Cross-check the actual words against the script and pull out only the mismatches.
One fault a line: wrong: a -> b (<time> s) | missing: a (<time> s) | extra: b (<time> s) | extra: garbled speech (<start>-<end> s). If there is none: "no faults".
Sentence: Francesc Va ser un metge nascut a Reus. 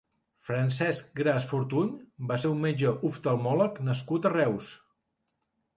extra: Gras Fortuny (1.2 s)
extra: oftalmòleg (3.1 s)